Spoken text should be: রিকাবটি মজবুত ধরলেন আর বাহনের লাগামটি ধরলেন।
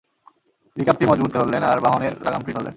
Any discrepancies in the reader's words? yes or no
no